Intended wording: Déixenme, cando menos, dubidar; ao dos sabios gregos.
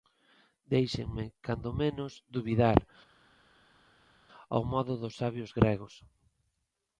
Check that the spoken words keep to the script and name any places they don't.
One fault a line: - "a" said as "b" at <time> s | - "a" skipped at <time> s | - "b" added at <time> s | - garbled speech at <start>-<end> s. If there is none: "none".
- "modo" added at 4.7 s